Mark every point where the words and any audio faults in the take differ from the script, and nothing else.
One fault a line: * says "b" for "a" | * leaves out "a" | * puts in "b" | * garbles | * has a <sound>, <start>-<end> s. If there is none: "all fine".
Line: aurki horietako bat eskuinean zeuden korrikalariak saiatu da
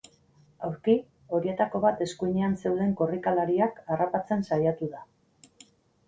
* puts in "harrapatzen"